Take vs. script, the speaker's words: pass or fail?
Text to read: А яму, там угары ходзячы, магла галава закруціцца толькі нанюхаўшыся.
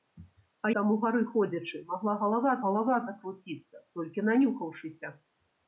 fail